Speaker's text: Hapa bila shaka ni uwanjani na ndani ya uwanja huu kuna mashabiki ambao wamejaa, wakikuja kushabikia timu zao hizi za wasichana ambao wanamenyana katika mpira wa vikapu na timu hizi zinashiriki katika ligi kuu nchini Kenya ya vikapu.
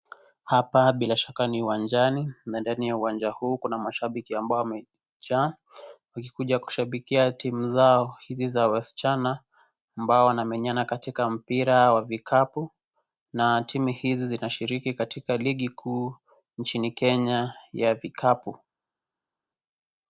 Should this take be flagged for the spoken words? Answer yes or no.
no